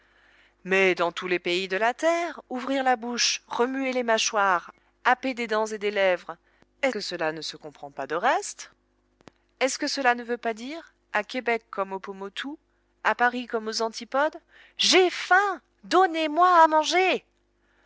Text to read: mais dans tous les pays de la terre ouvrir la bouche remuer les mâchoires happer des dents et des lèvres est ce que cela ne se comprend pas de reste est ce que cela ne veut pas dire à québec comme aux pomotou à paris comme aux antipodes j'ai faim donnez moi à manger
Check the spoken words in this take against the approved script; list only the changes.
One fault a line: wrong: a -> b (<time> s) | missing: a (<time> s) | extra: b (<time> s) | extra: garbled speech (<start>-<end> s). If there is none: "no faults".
missing: ce (6.9 s)